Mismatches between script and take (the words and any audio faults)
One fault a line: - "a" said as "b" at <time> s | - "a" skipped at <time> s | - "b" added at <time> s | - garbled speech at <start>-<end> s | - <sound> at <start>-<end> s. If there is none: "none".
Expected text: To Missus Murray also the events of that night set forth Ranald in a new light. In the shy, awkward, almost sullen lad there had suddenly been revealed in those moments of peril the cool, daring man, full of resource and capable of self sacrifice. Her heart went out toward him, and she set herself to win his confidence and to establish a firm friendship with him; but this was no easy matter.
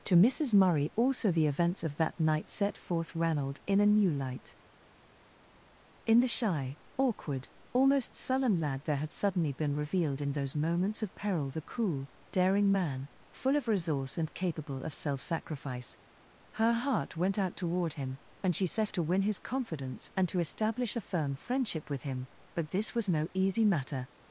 - "herself" skipped at 18.9 s